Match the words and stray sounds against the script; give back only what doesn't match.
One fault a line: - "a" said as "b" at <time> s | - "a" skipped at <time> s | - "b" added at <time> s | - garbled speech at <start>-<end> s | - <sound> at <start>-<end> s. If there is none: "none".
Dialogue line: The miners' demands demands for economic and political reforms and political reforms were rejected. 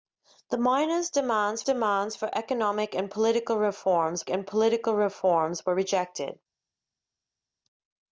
none